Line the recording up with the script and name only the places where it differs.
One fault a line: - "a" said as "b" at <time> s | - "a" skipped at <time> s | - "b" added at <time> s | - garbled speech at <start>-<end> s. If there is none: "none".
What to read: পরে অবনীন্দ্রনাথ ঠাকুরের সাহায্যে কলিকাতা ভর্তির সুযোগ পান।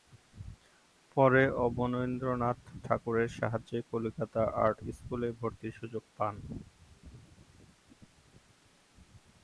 - "আর্ট স্কুলে" added at 4.6 s